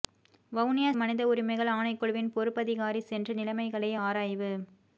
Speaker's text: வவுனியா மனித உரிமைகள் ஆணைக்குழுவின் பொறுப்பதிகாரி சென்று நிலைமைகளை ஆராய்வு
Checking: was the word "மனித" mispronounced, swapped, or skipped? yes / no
no